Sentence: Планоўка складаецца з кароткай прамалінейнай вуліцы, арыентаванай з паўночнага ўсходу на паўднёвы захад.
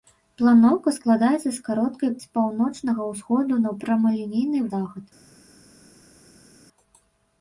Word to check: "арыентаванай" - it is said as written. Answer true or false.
false